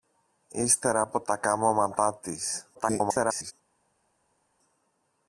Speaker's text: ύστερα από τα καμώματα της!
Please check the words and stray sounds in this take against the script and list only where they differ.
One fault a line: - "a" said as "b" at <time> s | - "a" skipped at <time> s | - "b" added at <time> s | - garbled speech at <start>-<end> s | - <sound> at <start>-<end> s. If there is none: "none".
- garbled speech at 2.7-3.5 s